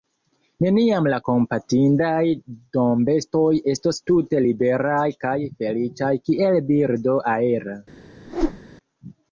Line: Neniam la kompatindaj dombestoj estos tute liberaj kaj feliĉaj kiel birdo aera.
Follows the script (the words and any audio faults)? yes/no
no